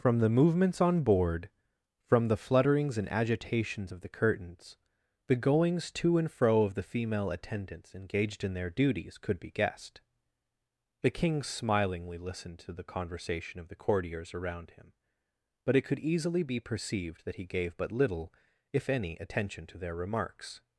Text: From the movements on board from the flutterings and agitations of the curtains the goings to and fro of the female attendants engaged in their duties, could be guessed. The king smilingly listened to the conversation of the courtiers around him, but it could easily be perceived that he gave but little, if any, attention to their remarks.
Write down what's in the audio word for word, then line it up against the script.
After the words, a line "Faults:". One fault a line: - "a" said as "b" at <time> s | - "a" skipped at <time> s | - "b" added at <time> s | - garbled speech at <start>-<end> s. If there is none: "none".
From the movements on board from the flutterings and agitations of the curtains the goings to and fro of the female attendants engaged in their duties, could be guessed. The king smilingly listened to the conversation of the courtiers around him, but it could easily be perceived that he gave but little, if any, attention to their remarks.
Faults:
none